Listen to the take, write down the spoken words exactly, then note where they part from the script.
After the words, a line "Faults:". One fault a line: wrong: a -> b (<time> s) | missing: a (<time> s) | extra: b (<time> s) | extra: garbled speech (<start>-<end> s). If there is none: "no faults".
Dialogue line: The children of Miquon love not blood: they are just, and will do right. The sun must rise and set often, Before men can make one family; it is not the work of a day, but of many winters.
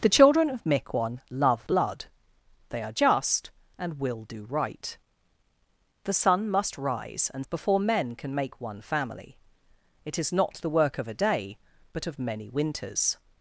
The children of Miquon love blood: they are just, and will do right. The sun must rise and Before men can make one family; it is not the work of a day, but of many winters.
Faults:
missing: not (1.7 s)
missing: set often (7.5 s)